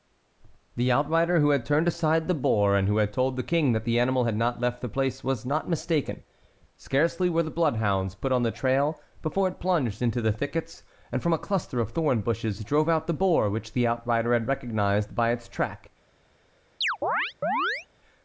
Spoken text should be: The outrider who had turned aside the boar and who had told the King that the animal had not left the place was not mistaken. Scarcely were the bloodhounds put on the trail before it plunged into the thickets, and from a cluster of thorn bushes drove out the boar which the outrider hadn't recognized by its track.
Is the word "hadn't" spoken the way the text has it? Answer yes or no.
no